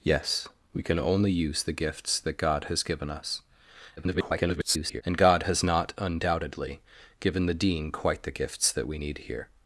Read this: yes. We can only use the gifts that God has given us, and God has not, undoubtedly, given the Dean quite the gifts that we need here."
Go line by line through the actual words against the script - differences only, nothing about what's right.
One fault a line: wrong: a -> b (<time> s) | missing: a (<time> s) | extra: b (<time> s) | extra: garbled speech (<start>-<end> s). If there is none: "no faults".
extra: garbled speech (4.0-5.0 s)